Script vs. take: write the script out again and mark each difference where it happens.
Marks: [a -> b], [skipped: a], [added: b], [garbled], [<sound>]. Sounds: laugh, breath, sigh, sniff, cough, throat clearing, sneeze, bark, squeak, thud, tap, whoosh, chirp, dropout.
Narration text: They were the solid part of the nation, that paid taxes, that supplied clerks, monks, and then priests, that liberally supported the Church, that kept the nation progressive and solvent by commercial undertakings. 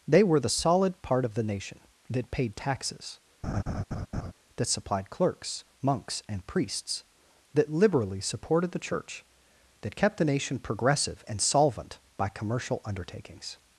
They were the solid part of the nation, that paid taxes, [laugh] that supplied clerks, monks, and [skipped: then] priests, that liberally supported the Church, that kept the nation progressive and solvent by commercial undertakings.